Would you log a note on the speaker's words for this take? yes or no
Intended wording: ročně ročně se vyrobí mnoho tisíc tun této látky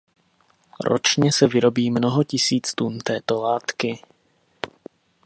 yes